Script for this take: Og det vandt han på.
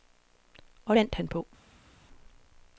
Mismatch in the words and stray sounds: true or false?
true